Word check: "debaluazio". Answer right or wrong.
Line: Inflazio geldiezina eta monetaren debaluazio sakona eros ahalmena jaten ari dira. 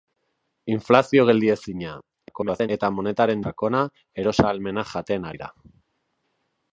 wrong